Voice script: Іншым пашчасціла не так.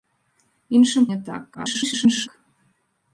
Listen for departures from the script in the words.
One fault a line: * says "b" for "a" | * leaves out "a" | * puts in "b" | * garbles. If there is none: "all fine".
* leaves out "пашчасціла"
* garbles